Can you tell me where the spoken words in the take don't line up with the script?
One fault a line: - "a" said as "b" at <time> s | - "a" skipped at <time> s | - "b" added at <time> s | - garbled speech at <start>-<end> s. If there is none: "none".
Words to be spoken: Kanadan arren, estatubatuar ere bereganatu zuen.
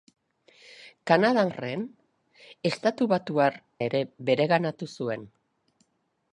none